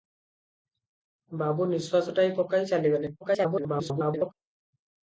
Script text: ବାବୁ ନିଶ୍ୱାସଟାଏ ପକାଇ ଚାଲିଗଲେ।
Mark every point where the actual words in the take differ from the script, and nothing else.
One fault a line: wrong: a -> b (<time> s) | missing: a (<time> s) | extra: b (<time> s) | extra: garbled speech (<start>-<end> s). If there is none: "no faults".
extra: garbled speech (3.2-4.3 s)